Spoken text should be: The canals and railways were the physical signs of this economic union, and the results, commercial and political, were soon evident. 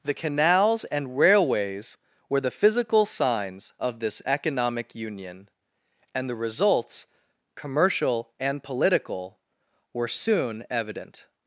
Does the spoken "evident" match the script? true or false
true